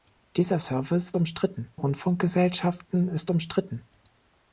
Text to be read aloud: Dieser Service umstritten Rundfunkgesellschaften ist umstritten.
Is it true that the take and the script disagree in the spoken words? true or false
false